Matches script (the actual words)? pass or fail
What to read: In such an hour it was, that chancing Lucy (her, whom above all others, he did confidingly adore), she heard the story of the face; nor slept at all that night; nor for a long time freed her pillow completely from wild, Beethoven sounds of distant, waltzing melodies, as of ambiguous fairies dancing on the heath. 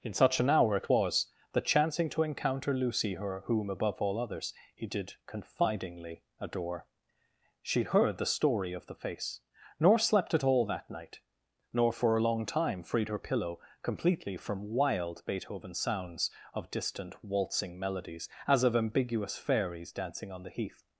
fail